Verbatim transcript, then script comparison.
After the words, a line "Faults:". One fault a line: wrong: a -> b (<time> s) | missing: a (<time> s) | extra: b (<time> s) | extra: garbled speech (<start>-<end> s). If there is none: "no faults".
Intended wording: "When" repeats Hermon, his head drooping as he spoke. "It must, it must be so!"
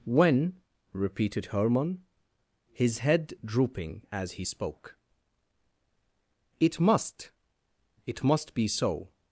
"When" repeated Hermon, his head drooping as he spoke. "It must, it must be so!"
Faults:
wrong: repeats -> repeated (0.9 s)